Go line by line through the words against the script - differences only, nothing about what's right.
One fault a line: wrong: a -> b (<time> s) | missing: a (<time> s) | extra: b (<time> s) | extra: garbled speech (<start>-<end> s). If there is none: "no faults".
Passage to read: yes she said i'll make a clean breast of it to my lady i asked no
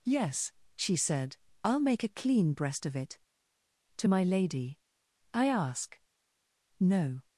wrong: asked -> ask (5.5 s)